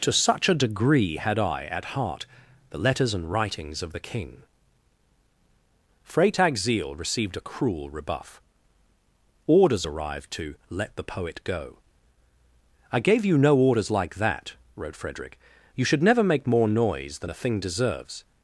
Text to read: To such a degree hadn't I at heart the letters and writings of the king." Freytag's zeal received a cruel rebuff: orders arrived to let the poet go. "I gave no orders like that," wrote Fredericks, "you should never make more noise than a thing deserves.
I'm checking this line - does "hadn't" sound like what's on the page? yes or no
no